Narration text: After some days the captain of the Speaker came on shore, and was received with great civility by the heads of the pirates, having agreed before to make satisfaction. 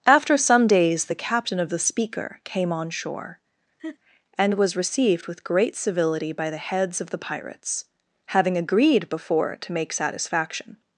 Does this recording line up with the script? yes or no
yes